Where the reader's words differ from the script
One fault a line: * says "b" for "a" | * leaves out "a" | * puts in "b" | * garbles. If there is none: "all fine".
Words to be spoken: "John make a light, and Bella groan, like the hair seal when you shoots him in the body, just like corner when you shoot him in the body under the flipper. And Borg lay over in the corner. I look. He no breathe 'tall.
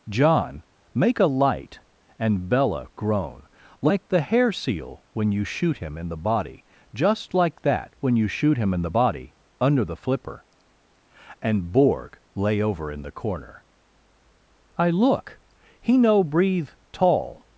* says "shoot" for "shoots"
* says "that" for "corner"